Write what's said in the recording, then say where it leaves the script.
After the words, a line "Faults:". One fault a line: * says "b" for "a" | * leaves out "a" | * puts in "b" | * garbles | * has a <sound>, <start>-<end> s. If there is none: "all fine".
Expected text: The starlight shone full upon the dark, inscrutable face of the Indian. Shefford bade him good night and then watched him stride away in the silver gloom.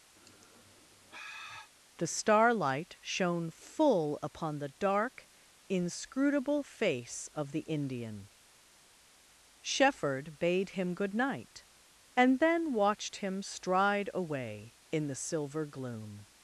The starlight shone full upon the dark, inscrutable face of the Indian. Shefford bade him good night and then watched him stride away in the silver gloom.
Faults:
* has a sigh, 0.2-1.7 s